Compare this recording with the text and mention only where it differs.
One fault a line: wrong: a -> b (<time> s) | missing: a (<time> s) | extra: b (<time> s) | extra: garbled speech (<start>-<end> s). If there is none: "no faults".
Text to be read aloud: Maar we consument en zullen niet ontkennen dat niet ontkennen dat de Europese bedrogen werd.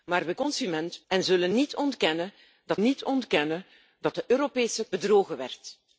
no faults